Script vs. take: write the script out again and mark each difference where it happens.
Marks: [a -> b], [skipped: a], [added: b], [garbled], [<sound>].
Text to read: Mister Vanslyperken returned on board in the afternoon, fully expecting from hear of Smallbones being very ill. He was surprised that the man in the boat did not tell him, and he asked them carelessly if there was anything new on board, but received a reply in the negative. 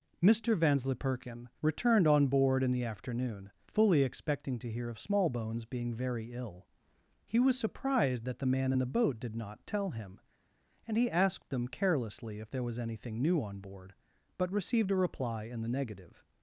Mister Vanslyperken returned on board in the afternoon, fully expecting [from -> to] hear of Smallbones being very ill. He was surprised that the man in the boat did not tell him, and he asked them carelessly if there was anything new on board, but received a reply in the negative.